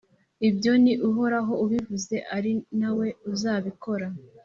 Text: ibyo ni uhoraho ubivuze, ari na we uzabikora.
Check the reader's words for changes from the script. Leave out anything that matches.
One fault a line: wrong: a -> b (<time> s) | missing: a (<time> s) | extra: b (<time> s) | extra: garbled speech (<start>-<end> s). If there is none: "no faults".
no faults